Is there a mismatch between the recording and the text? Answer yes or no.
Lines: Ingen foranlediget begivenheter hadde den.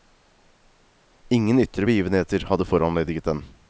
yes